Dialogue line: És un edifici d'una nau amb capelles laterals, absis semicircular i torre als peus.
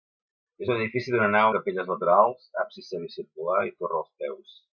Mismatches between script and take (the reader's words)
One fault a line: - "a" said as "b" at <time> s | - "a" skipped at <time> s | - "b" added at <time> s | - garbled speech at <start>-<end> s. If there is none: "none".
- "amb" skipped at 1.5 s